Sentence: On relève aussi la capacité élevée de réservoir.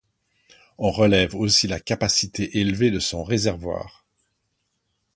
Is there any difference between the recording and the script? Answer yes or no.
yes